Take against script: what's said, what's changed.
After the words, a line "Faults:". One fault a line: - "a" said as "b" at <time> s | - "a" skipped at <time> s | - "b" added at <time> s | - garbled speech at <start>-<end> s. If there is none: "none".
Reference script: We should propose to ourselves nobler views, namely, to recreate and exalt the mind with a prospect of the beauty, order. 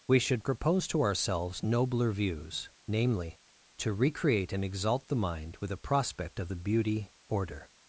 We should propose to ourselves nobler views, namely, to recreate and exalt the mind with a prospect of the beauty, order.
Faults:
none